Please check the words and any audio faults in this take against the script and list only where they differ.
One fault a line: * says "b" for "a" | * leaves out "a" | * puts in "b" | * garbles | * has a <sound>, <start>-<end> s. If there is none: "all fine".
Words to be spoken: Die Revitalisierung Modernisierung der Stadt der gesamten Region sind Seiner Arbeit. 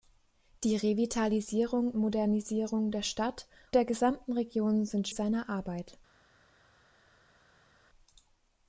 all fine